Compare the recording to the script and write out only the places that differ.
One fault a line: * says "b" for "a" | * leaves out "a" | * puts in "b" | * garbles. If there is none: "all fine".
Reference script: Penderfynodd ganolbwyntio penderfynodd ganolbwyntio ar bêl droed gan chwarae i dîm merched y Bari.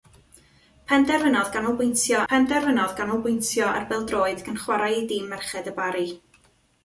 all fine